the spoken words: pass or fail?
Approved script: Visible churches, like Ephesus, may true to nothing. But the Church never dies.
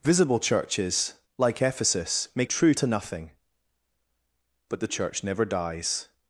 pass